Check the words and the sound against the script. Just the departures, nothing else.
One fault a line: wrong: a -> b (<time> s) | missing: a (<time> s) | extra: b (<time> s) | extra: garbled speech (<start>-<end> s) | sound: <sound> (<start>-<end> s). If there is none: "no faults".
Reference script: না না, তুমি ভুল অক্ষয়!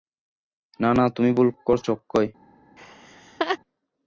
extra: করছ (1.7 s)
sound: laugh (2.8-3.6 s)